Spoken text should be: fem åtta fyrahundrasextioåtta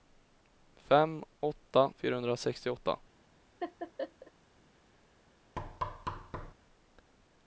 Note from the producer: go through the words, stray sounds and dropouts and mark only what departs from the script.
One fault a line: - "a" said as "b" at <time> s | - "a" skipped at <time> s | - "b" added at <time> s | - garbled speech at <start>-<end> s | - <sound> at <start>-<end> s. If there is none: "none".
- laugh at 3.6-4.3 s
- thud at 5.6-6.5 s